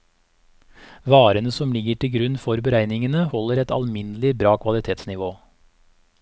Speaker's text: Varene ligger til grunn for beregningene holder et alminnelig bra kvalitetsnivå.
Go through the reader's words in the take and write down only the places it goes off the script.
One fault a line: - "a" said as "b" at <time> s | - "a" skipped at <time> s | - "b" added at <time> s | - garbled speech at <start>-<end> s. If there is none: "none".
- "som" added at 1.6 s